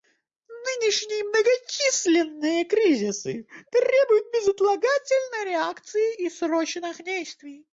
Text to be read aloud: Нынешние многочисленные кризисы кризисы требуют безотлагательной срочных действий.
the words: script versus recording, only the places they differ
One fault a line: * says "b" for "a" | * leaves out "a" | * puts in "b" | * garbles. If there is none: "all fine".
* leaves out "кризисы"
* puts in "реакции и"